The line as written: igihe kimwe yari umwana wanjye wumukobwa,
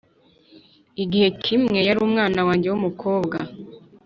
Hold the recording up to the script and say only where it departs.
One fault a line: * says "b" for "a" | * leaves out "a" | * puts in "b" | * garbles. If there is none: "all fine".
all fine